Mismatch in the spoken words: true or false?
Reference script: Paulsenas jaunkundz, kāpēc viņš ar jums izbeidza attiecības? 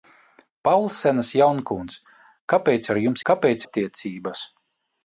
true